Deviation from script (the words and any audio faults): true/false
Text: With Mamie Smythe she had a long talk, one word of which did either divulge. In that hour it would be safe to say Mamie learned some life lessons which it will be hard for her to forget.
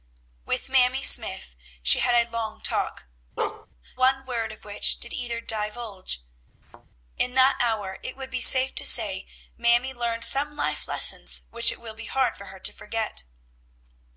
true